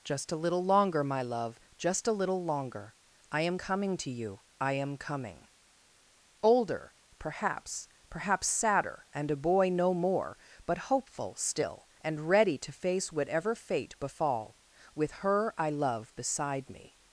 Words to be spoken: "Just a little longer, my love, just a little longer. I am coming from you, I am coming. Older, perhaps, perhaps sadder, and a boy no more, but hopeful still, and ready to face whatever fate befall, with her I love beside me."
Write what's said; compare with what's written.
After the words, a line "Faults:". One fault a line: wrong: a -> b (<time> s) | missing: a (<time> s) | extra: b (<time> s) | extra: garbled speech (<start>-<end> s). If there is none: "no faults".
"Just a little longer, my love, just a little longer. I am coming to you, I am coming. Older, perhaps, perhaps sadder, and a boy no more, but hopeful still, and ready to face whatever fate befall, with her I love beside me."
Faults:
wrong: from -> to (4.0 s)